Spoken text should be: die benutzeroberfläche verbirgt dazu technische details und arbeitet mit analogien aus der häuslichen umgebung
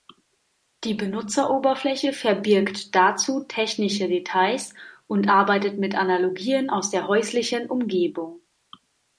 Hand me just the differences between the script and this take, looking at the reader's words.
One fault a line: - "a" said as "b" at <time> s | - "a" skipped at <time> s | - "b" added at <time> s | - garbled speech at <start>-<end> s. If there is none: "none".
none